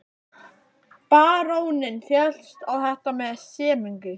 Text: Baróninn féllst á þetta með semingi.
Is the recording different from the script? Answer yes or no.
no